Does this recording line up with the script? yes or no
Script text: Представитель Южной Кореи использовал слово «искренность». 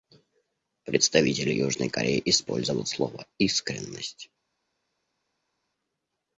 yes